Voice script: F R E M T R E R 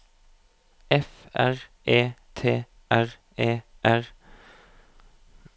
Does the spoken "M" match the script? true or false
false